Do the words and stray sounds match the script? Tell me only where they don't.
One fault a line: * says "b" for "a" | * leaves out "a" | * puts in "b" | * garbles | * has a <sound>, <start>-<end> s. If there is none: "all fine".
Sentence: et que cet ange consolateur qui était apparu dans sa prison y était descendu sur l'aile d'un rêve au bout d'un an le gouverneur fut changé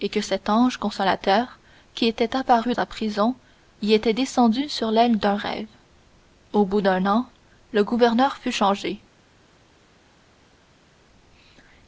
* leaves out "dans"